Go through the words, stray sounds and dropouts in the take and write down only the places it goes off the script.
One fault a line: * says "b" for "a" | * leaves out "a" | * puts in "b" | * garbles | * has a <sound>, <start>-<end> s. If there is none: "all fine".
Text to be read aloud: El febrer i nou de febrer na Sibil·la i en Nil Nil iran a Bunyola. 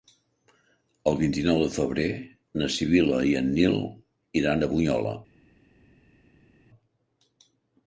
* says "vint" for "febrer"
* leaves out "Nil"